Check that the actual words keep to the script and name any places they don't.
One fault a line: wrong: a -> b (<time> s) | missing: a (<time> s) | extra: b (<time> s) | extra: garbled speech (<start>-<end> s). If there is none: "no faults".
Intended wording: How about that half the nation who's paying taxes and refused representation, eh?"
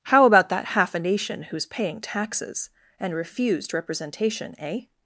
wrong: the -> a (0.9 s)